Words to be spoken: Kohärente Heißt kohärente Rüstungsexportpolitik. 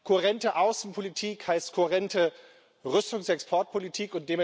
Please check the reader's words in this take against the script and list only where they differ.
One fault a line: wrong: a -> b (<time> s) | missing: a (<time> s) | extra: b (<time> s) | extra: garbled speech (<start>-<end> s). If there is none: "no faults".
extra: Außenpolitik (0.6 s)